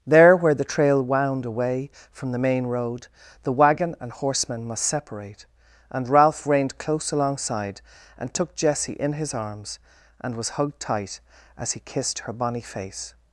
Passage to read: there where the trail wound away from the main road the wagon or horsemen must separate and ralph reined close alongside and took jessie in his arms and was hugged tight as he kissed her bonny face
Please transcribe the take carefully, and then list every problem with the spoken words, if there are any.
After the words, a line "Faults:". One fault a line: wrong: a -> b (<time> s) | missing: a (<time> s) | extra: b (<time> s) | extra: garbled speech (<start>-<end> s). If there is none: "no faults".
there where the trail wound away from the main road the wagon and horsemen must separate and ralph reined close alongside and took jessie in his arms and was hugged tight as he kissed her bonny face
Faults:
wrong: or -> and (4.0 s)